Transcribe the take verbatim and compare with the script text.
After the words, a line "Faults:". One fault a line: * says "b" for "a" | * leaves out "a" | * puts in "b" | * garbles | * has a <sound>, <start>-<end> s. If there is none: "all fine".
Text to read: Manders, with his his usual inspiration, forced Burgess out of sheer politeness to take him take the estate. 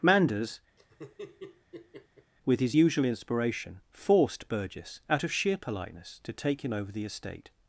Manders, with his usual inspiration, forced Burgess out of sheer politeness to take him over the estate.
Faults:
* has a laugh, 0.8-2.3 s
* leaves out "his"
* says "over" for "take"